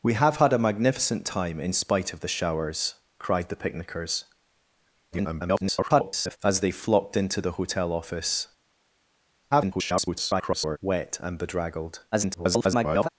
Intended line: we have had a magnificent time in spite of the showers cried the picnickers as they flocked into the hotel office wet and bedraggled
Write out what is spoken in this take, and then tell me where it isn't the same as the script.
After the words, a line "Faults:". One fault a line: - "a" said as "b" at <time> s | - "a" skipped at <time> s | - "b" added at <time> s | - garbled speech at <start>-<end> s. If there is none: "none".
we have had a magnificent time in spite of the showers cried the picnickers [garbled] as they flocked into the hotel office [garbled] wet and bedraggled [garbled]
Faults:
- garbled speech at 5.1-6.4 s
- garbled speech at 9.5-10.8 s
- garbled speech at 12.1-13.1 s